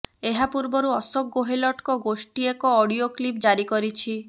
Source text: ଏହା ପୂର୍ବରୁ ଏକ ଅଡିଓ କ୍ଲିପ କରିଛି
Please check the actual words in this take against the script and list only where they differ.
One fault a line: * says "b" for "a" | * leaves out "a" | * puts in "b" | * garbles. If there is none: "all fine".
* puts in "ଅଶୋକ ଗେହଲଟଙ୍କ ଗୋଷ୍ଠୀ"
* puts in "ଜାରି"